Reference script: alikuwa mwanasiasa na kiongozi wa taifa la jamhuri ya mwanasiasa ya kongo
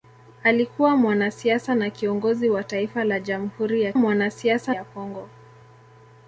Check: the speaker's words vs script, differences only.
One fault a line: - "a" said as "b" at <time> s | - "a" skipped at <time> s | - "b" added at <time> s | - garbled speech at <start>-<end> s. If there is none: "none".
none